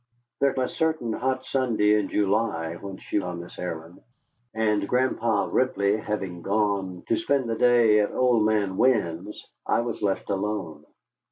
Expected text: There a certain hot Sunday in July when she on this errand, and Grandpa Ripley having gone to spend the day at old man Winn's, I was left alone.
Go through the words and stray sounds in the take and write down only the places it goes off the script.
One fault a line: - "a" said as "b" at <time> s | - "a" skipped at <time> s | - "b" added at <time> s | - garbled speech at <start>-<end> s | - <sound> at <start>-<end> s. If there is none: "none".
none